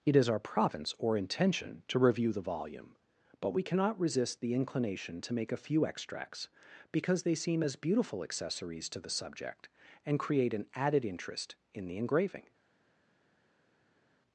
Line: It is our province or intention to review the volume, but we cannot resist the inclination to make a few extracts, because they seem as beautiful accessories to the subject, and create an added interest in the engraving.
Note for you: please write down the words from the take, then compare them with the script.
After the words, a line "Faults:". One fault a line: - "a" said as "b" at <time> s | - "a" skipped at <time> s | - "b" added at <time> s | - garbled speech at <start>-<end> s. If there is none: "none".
It is our province or intention to review the volume, but we cannot resist the inclination to make a few extracts, because they seem as beautiful accessories to the subject, and create an added interest in the engraving.
Faults:
none